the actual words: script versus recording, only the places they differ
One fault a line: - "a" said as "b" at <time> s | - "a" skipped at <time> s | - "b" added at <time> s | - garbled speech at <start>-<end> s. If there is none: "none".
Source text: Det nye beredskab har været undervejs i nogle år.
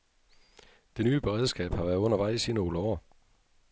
none